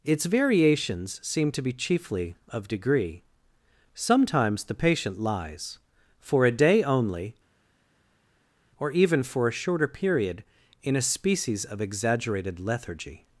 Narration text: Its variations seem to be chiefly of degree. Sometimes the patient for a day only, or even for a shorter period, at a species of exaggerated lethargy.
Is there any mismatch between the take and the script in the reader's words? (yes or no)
yes